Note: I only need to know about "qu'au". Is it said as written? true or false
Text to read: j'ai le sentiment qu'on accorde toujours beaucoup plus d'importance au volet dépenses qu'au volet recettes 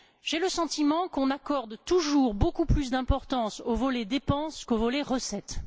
true